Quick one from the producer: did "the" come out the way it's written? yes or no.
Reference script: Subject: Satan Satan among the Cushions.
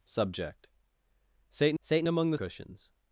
yes